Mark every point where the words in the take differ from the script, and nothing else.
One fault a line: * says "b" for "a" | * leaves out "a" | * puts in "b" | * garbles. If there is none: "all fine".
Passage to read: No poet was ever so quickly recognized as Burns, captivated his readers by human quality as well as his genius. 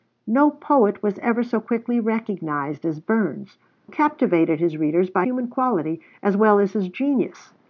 all fine